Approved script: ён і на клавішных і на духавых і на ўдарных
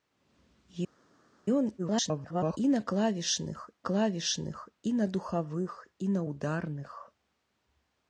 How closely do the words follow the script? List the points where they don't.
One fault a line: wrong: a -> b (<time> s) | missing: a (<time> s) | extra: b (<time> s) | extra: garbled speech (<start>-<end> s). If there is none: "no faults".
extra: garbled speech (1.8-2.6 s)
extra: клавішных (3.9 s)